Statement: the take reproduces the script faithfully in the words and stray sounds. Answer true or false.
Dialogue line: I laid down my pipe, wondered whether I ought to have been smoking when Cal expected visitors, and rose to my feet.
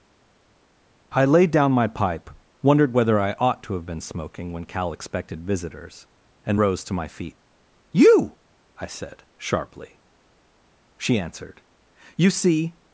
false